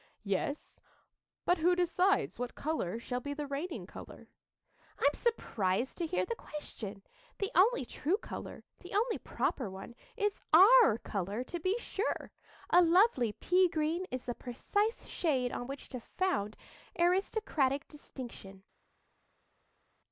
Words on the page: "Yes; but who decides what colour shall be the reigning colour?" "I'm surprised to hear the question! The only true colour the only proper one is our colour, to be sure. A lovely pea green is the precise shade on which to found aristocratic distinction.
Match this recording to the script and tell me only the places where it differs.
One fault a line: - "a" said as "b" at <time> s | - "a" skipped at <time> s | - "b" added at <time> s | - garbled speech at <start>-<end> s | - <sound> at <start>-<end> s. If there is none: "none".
none